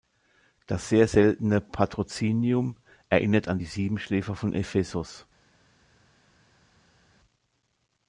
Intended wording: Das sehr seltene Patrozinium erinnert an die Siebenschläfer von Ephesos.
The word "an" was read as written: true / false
true